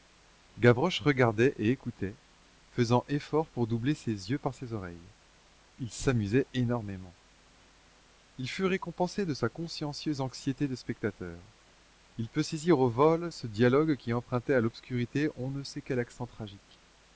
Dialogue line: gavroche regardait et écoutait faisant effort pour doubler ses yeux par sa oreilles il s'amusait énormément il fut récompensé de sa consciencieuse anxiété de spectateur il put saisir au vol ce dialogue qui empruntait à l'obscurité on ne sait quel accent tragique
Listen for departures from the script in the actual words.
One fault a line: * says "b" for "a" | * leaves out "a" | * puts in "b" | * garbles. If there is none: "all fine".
* says "ses" for "sa"